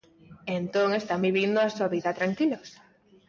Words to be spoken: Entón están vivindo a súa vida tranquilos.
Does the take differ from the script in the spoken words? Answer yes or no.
no